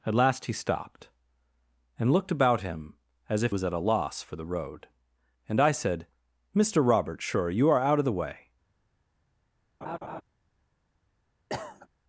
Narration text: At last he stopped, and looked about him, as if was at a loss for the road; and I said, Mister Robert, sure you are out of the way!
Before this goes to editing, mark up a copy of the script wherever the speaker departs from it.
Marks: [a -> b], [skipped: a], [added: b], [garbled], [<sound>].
At last he stopped, and looked about him, as if was at a loss for the road; and I said, Mister Robert, sure you are out of the way! [laugh] [cough]